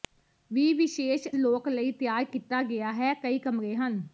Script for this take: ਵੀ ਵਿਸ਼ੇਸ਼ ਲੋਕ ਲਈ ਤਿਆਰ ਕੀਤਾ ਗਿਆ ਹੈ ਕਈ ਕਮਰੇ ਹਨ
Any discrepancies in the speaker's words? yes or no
no